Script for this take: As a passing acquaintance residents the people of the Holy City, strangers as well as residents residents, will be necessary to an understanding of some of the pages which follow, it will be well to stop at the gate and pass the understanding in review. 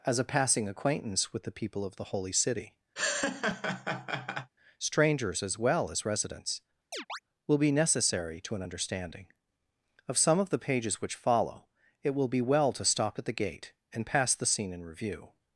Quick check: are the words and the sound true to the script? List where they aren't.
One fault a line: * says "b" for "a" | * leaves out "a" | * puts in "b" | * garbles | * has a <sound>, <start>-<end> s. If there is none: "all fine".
* says "with" for "residents"
* has a laugh, 3.0-4.5 s
* leaves out "residents"
* has a chirp, 6.9-7.2 s
* says "scene" for "understanding"